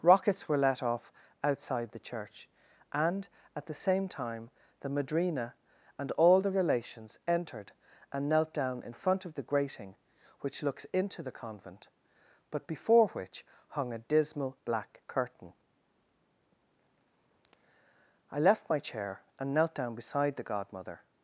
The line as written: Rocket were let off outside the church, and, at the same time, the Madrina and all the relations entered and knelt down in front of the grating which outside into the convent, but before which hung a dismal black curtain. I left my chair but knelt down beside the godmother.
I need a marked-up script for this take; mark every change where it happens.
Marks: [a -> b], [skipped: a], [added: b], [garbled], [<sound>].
[Rocket -> Rockets] were let off outside the church, and, at the same time, the Madrina and all the relations entered and knelt down in front of the grating which [outside -> looks] into the convent, but before which hung a dismal black curtain. I left my chair [but -> and] knelt down beside the godmother.